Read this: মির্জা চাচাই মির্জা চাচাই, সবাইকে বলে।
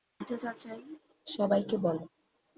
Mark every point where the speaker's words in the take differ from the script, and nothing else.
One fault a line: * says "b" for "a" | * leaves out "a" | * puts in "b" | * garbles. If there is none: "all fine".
* leaves out "মির্জা চাচাই"